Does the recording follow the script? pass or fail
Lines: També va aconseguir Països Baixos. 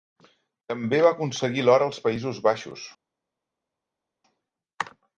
fail